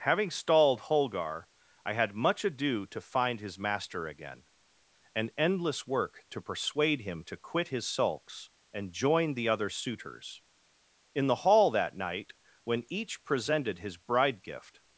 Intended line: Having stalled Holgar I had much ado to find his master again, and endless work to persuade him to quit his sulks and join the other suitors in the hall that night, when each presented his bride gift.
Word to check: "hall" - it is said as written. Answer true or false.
true